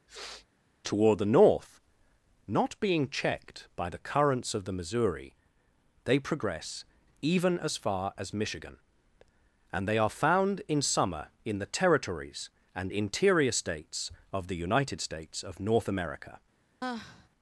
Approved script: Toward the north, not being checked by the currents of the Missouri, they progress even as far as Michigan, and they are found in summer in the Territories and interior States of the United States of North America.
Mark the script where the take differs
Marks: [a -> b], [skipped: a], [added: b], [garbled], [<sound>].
[sniff] Toward the north, not being checked by the currents of the Missouri, they progress even as far as Michigan, and they are found in summer in the Territories and interior States of the United States of North America. [sigh]